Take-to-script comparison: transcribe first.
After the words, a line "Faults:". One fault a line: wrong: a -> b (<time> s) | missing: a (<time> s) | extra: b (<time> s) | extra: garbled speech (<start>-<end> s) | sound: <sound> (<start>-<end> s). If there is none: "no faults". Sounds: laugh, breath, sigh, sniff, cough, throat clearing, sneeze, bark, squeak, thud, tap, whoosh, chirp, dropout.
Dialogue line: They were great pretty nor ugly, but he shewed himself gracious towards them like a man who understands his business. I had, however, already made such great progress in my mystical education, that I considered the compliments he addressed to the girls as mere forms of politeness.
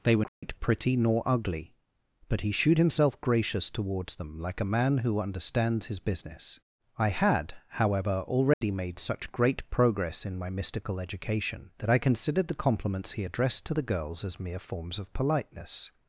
They were great pretty nor ugly, but he shewed himself gracious towards them like a man who understands his business. I had, however, already made such great progress in my mystical education, that I considered the compliments he addressed to the girls as mere forms of politeness.
Faults:
sound: dropout (0.3-0.4 s)
sound: dropout (8.5-8.6 s)